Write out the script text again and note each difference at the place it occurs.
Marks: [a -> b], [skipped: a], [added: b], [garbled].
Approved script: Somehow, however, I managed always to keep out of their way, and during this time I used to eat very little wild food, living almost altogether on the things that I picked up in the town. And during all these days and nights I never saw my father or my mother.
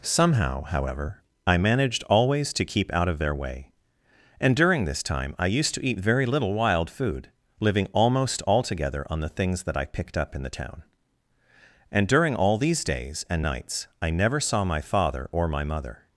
Somehow, however, I managed always to keep out of their way, and during this time I used to eat very little wild food, living almost altogether on the things that I picked up in the town. And during all these days and nights I never saw my father or my mother.